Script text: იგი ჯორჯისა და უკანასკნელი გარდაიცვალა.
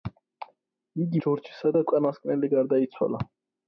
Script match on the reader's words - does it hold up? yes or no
yes